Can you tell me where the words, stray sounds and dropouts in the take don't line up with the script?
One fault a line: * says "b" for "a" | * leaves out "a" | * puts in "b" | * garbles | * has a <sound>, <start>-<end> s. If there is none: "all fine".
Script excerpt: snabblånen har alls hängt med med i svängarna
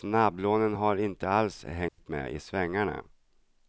* puts in "inte"
* has a dropout, 1.9-2.0 s
* leaves out "med"